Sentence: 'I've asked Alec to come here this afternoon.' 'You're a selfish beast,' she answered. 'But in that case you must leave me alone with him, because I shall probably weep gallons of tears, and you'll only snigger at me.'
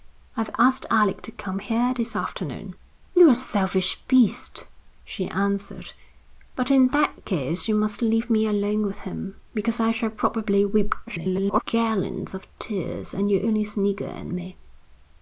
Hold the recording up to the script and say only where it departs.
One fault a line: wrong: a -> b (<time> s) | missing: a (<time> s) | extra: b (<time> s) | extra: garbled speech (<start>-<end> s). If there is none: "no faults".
extra: garbled speech (11.1-11.6 s)